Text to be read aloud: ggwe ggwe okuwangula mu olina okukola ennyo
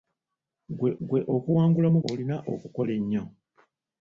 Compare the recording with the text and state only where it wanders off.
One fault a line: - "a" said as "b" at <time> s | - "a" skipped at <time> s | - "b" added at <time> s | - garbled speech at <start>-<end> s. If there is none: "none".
none